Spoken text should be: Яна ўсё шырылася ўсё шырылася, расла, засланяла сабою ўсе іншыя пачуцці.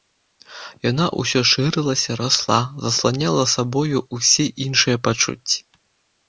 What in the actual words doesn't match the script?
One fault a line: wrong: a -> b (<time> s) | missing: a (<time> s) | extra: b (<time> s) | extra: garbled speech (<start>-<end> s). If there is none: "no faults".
missing: ўсё шырылася (2.1 s)